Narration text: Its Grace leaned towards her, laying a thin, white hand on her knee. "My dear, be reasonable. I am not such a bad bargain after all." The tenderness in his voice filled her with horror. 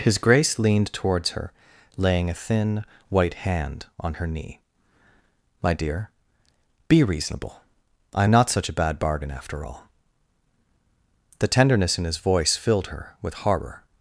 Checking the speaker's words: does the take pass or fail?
fail